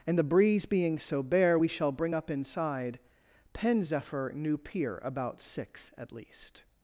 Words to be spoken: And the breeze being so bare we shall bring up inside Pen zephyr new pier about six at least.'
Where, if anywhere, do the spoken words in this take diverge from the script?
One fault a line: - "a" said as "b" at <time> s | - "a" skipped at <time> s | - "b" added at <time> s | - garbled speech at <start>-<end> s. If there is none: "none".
none